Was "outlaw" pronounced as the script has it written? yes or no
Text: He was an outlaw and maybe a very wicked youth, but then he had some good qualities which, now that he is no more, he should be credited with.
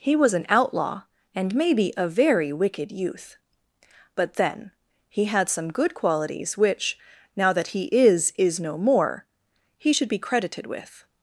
yes